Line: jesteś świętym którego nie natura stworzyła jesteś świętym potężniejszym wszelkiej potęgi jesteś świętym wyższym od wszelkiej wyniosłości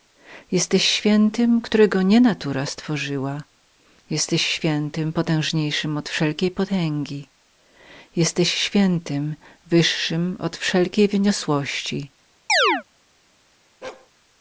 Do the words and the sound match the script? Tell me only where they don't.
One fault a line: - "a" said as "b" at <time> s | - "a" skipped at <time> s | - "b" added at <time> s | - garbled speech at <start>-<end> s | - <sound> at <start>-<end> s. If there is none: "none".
- "od" added at 6.0 s
- chirp at 12.5-12.8 s
- bark at 13.8-14.1 s